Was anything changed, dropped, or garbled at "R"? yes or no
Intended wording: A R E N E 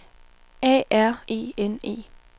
no